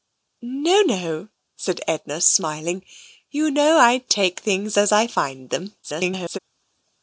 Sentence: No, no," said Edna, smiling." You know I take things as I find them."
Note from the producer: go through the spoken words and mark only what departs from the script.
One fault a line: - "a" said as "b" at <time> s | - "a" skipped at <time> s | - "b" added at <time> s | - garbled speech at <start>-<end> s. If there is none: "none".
- garbled speech at 5.8-6.4 s